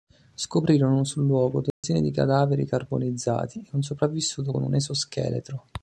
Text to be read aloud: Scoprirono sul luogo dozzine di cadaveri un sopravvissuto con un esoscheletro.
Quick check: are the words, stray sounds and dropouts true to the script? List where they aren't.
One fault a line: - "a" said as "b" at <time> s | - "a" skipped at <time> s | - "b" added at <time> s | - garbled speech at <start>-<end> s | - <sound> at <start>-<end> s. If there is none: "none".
- dropout at 1.7-1.8 s
- "carbonizzati e" added at 2.6 s